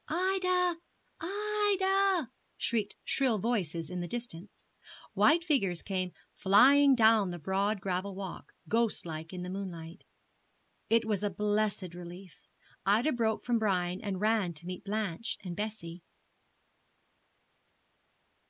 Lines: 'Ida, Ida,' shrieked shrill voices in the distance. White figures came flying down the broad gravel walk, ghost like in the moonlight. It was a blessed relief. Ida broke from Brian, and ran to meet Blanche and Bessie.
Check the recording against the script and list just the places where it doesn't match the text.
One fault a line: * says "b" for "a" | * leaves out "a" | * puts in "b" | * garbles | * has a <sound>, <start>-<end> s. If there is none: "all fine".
all fine